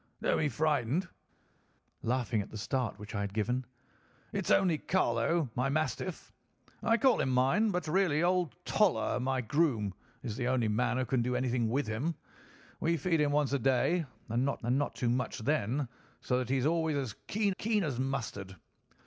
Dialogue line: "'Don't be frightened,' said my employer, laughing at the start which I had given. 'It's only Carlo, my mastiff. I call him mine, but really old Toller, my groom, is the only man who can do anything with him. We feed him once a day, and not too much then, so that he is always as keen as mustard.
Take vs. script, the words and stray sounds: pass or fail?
fail